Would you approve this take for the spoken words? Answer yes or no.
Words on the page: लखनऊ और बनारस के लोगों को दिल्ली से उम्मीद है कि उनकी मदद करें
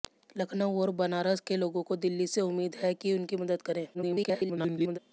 no